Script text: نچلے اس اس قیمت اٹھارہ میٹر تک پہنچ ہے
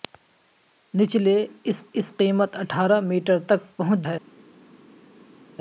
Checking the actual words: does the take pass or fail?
pass